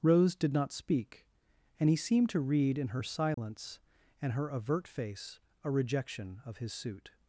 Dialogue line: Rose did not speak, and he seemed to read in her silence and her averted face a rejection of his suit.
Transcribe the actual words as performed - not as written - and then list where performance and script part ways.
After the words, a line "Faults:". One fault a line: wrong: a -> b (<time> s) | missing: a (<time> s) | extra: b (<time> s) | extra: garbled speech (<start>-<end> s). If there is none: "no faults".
Rose did not speak, and he seemed to read in her silence and her avert face a rejection of his suit.
Faults:
wrong: averted -> avert (4.5 s)